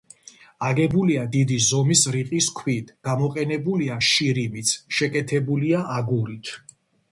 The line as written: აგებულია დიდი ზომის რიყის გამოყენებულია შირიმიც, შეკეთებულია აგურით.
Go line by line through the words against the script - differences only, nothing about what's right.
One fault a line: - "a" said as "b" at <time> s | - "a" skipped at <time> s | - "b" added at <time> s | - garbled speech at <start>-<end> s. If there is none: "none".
- "ქვით" added at 2.6 s